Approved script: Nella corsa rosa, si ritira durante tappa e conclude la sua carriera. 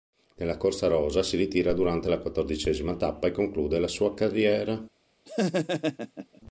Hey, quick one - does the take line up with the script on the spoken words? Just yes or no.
no